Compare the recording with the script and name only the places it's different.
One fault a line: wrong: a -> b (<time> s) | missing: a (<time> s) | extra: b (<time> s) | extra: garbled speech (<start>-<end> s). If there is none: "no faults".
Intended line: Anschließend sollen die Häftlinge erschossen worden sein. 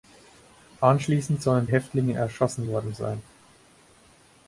missing: die (1.7 s)